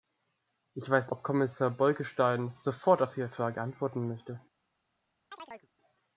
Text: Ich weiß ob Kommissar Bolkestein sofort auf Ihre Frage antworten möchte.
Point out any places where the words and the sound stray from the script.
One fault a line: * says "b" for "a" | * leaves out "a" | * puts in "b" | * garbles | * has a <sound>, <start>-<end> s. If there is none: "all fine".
* has a chirp, 5.3-5.7 s